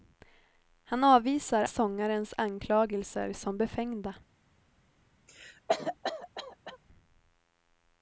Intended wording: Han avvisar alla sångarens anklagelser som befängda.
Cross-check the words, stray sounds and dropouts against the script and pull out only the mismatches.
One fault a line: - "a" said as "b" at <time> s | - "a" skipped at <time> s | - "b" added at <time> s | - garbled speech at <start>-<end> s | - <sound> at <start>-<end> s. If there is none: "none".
- "alla" skipped at 1.6 s
- cough at 5.3-6.8 s